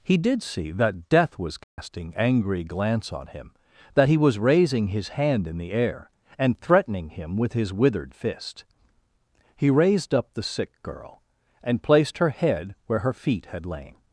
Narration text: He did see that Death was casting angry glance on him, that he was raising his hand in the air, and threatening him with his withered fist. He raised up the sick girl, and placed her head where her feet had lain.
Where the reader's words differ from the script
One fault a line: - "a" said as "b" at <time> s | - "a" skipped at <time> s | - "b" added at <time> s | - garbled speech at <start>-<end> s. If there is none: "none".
none